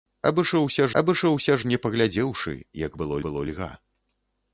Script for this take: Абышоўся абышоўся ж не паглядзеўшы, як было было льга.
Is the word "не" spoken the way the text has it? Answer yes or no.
yes